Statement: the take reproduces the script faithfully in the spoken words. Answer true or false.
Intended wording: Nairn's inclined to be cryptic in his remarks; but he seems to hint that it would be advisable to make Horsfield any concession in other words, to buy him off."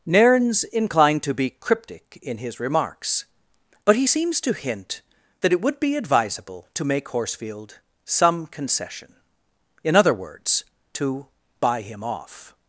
false